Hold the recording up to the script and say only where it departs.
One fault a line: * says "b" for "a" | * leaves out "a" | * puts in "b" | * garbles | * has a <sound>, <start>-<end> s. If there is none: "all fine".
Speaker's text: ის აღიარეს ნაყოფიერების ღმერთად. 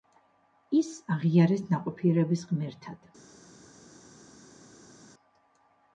all fine